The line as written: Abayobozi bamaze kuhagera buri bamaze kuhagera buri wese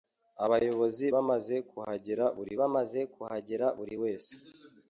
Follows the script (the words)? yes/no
yes